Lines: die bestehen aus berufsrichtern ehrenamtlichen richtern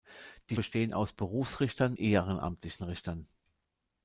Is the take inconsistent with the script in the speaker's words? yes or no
no